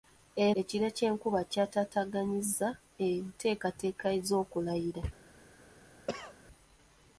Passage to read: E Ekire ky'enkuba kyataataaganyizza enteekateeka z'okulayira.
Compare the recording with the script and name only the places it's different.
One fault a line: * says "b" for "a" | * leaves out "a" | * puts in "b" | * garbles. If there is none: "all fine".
all fine